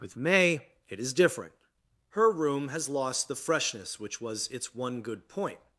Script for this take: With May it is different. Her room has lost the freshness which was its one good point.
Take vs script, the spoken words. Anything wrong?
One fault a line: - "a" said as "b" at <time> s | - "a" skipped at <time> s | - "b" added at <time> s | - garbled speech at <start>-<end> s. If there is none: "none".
none